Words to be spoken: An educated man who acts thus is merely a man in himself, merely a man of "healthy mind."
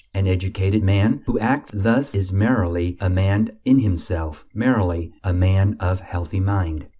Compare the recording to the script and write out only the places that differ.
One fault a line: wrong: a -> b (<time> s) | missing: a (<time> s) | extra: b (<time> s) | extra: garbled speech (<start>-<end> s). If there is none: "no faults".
no faults